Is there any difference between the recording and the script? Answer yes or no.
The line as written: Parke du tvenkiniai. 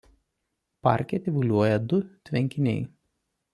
yes